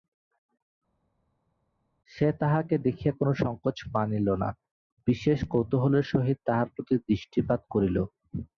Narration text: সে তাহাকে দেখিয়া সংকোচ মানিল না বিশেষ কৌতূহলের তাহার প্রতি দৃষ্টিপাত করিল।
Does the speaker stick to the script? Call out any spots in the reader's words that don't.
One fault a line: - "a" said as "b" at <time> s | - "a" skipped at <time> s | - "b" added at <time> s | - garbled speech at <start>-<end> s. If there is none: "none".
- "কোনো" added at 3.2 s
- "সহিত" added at 6.1 s